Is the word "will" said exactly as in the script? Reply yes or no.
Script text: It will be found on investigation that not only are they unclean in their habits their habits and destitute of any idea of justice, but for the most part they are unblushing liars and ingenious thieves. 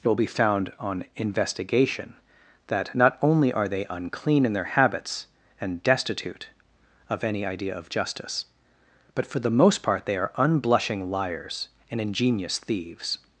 yes